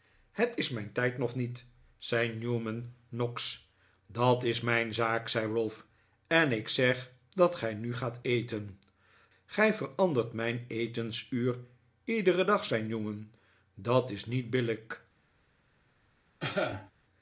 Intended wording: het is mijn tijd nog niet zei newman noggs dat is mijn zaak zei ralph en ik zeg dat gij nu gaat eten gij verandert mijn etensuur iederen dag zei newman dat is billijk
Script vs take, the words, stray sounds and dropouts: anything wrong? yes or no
yes